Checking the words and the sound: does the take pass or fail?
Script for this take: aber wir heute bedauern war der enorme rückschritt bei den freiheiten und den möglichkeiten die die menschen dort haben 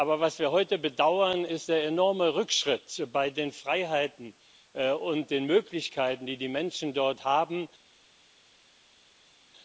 fail